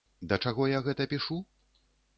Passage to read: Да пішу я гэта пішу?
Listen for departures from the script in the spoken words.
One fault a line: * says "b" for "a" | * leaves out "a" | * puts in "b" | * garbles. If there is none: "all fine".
* says "чаго" for "пішу"